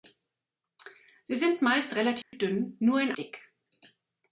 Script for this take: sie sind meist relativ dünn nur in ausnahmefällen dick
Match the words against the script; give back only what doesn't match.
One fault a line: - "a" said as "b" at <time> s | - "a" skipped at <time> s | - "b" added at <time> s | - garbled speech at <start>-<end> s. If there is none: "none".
- "ausnahmefällen" skipped at 3.1 s